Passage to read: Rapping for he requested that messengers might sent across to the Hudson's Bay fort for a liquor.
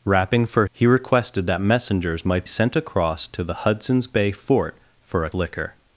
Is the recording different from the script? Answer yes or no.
no